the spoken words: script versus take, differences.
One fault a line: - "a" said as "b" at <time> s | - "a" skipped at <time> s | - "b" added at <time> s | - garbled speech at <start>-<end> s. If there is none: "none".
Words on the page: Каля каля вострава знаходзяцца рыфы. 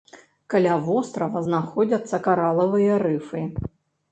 - "каля" skipped at 0.8 s
- "каралавыя" added at 2.3 s